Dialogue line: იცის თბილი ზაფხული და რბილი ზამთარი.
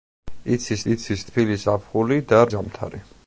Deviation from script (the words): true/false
true